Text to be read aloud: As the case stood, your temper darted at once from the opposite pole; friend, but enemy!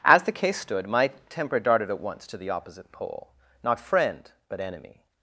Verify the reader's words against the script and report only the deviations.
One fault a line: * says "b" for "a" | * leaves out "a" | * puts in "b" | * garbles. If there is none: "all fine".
* says "my" for "your"
* says "to" for "from"
* puts in "not"